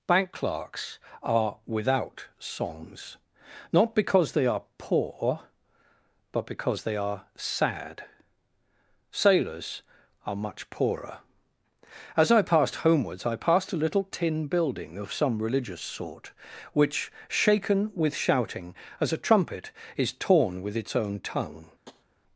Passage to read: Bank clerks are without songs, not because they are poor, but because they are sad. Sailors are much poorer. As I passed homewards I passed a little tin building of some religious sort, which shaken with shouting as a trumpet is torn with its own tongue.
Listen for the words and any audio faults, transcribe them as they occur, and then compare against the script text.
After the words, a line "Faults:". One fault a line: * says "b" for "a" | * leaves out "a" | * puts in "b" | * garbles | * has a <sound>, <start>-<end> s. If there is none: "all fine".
Bank clerks are without songs, not because they are poor, but because they are sad. Sailors are much poorer. As I passed homewards I passed a little tin building of some religious sort, which shaken with shouting as a trumpet is torn with its own tongue.
Faults:
* has a tap, 21.9-22.0 s